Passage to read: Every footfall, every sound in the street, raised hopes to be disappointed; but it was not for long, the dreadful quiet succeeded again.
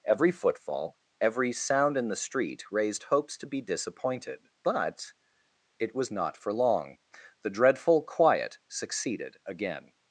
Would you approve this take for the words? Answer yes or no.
yes